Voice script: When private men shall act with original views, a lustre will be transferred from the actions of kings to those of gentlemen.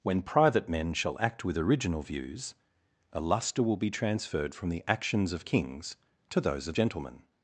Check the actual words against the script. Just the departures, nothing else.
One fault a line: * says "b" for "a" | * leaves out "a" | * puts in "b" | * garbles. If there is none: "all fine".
all fine